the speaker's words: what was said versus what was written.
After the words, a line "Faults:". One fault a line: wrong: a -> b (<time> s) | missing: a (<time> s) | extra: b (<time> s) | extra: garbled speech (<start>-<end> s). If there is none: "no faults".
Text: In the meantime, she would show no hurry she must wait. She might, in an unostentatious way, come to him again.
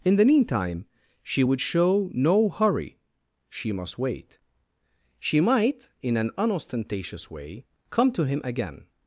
In the meantime, she would show no hurry she must wait. She might, in an unostentatious way, come to him again.
Faults:
no faults